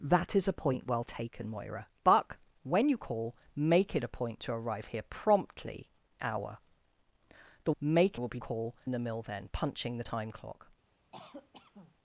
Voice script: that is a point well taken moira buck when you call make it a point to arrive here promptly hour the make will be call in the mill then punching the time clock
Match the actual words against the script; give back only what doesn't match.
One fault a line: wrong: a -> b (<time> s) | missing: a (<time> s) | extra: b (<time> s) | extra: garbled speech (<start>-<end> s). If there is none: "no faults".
no faults